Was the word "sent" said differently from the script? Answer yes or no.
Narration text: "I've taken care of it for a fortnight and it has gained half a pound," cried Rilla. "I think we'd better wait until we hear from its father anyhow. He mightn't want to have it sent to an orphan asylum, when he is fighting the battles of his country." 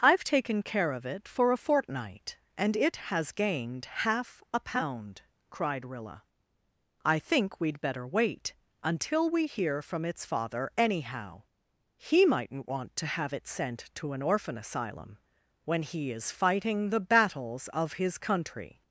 no